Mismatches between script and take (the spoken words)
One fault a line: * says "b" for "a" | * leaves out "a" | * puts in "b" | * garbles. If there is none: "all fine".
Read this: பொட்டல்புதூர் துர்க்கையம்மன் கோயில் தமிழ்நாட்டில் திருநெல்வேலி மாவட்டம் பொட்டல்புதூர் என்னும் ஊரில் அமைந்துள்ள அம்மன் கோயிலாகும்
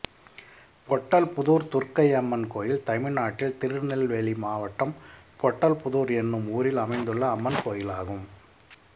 all fine